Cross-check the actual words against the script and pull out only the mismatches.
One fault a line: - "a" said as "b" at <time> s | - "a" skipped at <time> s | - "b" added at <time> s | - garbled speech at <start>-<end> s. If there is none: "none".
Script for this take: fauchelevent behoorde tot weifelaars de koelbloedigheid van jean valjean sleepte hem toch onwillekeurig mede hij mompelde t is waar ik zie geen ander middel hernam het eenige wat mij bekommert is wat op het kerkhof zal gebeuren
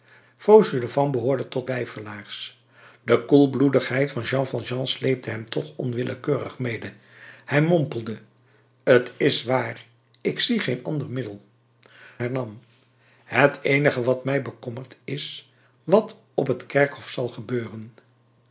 none